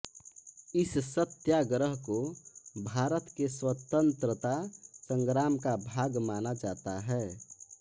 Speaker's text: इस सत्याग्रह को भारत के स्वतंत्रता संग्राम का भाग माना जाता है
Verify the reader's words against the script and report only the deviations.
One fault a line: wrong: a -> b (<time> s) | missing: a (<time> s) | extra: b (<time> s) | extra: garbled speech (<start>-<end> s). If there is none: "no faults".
no faults